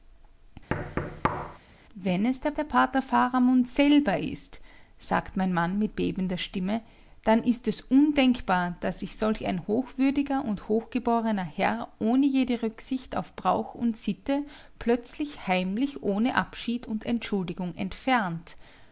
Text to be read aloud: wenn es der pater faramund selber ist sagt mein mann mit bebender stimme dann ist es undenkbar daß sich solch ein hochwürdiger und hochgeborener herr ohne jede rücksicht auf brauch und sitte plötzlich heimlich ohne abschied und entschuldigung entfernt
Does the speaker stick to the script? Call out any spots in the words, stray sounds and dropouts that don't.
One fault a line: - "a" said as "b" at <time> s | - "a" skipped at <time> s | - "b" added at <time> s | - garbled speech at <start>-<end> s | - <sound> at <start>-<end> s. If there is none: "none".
- thud at 0.7-1.6 s
- "der" added at 2.5 s